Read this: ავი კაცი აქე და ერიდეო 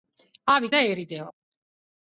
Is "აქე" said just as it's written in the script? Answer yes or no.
no